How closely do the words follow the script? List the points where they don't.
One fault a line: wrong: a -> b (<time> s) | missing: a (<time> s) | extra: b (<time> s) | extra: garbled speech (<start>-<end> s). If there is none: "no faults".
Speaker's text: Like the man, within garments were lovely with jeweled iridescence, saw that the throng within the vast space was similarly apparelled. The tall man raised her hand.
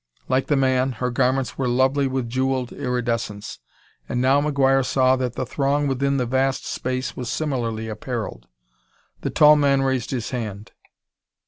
wrong: within -> her (0.9 s)
extra: and now McGuire (4.1 s)
wrong: her -> his (10.1 s)